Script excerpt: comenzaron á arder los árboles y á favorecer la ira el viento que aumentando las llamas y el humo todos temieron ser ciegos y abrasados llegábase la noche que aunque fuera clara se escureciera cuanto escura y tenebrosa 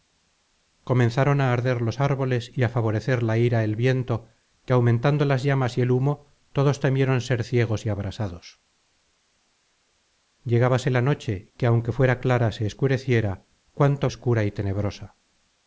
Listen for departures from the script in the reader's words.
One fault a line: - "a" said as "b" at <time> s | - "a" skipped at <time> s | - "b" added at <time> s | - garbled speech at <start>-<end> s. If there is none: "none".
none